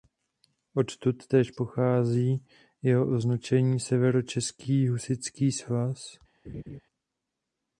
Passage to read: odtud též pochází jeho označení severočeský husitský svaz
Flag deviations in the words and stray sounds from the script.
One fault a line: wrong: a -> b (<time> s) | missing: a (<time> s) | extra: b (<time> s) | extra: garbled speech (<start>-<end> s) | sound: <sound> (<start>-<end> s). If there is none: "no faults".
sound: laugh (6.4-6.8 s)